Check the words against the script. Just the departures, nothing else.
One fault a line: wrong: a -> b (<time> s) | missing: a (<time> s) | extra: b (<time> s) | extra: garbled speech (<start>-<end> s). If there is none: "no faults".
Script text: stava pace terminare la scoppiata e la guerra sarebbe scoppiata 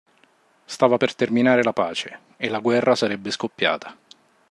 wrong: pace -> per (0.9 s)
wrong: scoppiata -> pace (1.7 s)